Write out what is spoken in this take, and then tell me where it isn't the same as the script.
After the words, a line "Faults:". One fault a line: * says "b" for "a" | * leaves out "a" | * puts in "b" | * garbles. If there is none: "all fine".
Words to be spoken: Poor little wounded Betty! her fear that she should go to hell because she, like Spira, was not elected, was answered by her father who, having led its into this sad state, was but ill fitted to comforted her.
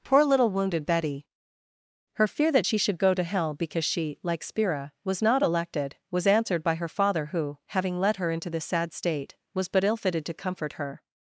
Poor little wounded Betty! her fear that she should go to hell because she, like Spira, was not elected, was answered by her father who, having led her into this sad state, was but ill fitted to comfort her.
Faults:
* says "her" for "its"
* says "comfort" for "comforted"